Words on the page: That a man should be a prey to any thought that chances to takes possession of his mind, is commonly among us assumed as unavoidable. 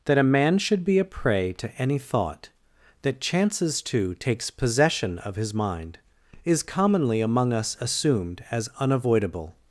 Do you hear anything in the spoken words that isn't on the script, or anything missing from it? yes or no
no